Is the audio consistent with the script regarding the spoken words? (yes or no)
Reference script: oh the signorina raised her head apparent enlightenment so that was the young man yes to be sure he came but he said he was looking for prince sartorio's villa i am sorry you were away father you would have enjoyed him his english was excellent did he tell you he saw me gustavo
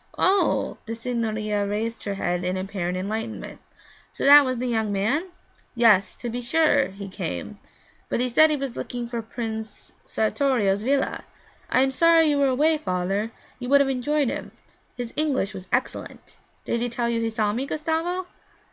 no